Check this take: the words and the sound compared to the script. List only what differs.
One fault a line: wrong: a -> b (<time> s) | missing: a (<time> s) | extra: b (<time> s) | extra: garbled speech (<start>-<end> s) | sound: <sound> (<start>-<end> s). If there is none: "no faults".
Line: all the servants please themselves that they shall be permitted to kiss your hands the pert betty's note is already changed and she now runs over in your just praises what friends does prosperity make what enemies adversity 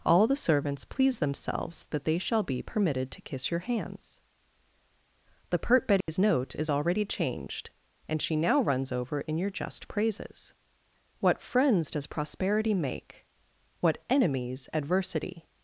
sound: dropout (6.0-6.1 s)